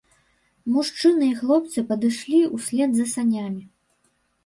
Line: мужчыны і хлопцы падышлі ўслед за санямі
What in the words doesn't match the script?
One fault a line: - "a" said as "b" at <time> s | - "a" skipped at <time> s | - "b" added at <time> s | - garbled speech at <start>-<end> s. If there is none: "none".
none